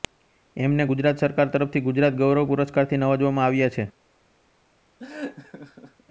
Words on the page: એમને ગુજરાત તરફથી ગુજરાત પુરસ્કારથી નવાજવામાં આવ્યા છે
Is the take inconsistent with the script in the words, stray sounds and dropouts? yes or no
yes